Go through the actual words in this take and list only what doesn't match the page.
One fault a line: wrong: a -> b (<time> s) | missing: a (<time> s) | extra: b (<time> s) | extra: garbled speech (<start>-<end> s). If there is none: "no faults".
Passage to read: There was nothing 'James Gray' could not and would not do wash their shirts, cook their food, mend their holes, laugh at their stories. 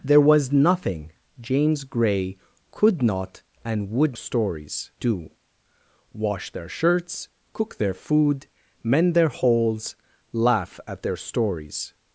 wrong: not -> stories (4.1 s)